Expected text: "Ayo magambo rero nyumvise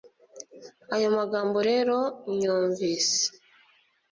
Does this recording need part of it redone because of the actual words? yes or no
no